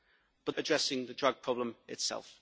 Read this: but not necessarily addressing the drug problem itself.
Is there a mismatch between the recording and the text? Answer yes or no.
yes